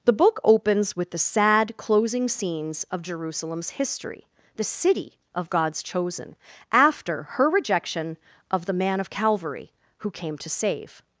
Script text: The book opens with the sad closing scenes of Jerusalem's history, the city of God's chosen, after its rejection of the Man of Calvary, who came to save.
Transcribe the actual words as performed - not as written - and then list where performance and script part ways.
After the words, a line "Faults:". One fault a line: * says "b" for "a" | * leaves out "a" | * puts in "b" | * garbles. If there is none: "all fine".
The book opens with the sad closing scenes of Jerusalem's history, the city of God's chosen, after her rejection of the Man of Calvary, who came to save.
Faults:
* says "her" for "its"